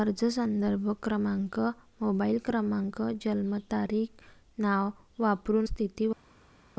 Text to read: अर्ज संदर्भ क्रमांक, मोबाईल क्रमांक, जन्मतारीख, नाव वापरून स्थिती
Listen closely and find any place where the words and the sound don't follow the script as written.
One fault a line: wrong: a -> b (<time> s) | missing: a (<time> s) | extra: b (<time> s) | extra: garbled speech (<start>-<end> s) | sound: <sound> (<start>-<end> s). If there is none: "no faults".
no faults